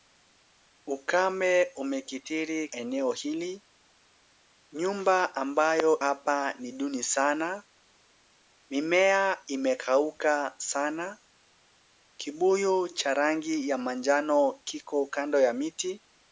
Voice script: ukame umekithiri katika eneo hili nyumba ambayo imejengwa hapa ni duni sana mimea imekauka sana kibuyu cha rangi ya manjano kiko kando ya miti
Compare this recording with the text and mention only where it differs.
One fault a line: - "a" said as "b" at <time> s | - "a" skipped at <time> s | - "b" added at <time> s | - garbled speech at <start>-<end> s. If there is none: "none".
- "katika" skipped at 2.7 s
- "imejengwa" skipped at 6.0 s